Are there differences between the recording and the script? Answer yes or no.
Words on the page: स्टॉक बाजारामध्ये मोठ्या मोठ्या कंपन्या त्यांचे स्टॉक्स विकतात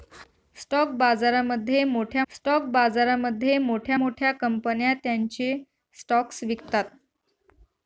yes